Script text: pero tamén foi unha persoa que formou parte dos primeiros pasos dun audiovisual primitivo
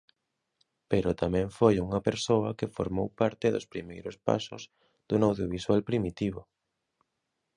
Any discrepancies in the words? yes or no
no